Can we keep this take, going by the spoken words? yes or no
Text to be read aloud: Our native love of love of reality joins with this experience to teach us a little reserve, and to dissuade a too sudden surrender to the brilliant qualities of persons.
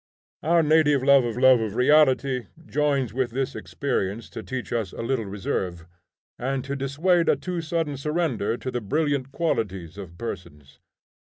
yes